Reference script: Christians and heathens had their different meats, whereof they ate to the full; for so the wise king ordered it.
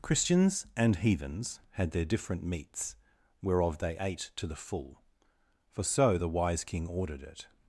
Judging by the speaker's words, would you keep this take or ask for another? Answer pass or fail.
pass